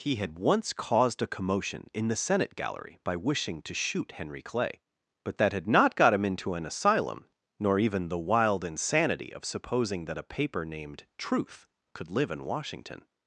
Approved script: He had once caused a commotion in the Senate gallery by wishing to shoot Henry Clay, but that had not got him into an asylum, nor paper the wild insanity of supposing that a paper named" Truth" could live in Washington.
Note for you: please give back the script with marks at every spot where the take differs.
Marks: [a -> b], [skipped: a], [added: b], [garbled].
He had once caused a commotion in the Senate gallery by wishing to shoot Henry Clay, but that had not got him into an asylum, nor [paper -> even] the wild insanity of supposing that a paper named" Truth" could live in Washington.